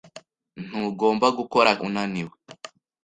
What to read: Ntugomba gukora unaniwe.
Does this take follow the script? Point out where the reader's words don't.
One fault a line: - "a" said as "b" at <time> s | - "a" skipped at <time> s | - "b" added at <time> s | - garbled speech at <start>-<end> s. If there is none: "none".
none